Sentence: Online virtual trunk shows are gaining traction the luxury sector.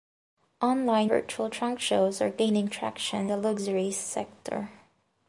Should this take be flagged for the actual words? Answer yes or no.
no